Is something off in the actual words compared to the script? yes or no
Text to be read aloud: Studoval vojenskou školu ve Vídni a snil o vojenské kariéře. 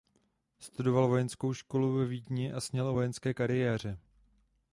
no